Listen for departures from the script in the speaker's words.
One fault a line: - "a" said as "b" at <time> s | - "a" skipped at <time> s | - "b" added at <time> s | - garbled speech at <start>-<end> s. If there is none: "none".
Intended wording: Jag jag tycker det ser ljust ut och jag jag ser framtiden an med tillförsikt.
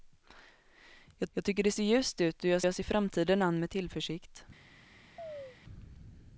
none